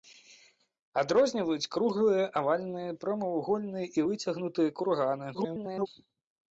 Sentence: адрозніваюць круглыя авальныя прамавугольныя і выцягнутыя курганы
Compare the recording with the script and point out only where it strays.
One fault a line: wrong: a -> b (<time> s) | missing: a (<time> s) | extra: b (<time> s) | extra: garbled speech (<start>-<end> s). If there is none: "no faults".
extra: garbled speech (5.3-5.9 s)